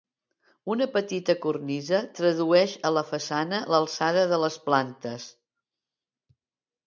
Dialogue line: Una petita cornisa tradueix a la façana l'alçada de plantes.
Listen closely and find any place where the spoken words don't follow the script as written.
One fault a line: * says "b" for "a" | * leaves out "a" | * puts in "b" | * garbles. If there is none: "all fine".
* puts in "les"